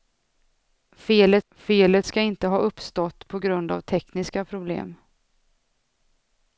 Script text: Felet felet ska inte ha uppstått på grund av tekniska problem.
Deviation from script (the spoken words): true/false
false